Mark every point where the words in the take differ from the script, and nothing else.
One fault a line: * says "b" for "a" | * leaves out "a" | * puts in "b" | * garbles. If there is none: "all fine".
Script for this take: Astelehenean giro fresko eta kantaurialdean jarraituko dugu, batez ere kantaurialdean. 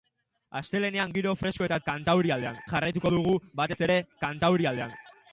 all fine